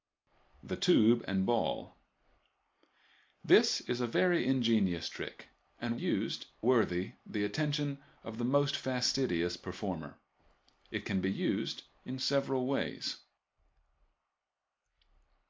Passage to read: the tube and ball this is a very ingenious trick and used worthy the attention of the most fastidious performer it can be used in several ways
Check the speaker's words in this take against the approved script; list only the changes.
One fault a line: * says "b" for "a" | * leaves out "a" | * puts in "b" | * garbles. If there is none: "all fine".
all fine